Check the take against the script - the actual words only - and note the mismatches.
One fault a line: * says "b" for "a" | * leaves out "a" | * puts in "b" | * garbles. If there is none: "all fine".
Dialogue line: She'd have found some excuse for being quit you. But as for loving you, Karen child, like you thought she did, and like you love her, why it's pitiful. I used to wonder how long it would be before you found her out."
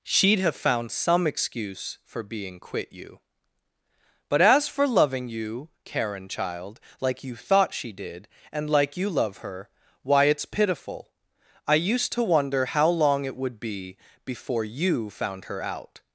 all fine